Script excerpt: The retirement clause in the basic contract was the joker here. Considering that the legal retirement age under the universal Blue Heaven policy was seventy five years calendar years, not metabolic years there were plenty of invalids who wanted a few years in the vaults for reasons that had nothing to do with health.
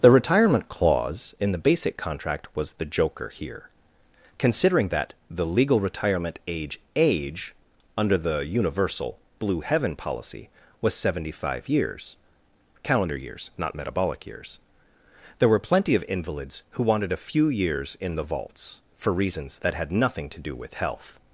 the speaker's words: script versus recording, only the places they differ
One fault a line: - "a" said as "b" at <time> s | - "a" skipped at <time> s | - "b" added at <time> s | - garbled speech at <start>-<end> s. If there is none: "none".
- "age" added at 6.9 s